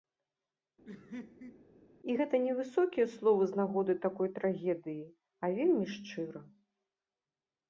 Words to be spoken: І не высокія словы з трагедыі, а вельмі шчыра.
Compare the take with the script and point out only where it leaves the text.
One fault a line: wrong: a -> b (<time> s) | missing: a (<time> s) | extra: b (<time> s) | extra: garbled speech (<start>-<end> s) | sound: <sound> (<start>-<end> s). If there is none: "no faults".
sound: laugh (0.9-1.7 s)
extra: гэта (2.2 s)
extra: нагоды такой (3.6 s)